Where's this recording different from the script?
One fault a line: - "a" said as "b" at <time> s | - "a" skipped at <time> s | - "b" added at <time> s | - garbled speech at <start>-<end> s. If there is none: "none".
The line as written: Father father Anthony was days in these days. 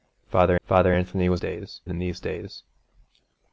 none